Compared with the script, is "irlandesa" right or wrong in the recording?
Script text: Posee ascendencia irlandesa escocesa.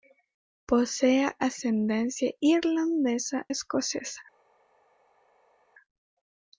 right